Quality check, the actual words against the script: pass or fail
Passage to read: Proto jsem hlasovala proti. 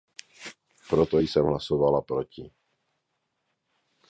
pass